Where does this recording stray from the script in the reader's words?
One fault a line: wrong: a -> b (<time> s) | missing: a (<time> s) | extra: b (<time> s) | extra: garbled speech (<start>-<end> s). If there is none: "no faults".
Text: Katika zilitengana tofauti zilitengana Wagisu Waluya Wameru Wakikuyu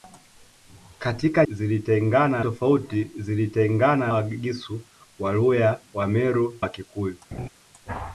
no faults